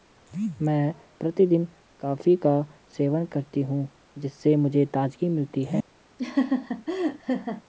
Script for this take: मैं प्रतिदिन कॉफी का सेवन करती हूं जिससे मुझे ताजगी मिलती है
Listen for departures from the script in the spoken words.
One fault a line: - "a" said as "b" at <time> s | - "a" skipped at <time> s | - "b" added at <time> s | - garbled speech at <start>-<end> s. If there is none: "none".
none